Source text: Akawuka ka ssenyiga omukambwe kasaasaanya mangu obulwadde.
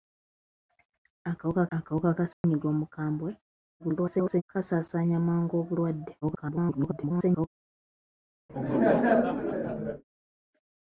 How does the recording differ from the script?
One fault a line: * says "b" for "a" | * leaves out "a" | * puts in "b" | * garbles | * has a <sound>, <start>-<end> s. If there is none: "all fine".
* puts in "akawuka"
* has a dropout, 2.3-2.4 s
* garbles
* garbles
* has a laugh, 8.5-10.0 s